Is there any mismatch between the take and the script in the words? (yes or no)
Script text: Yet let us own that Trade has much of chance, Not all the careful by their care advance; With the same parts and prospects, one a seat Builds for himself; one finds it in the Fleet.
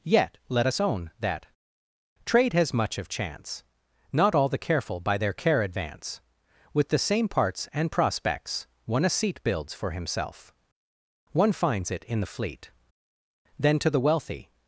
yes